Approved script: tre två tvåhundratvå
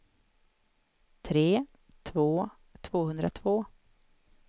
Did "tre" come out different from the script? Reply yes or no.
no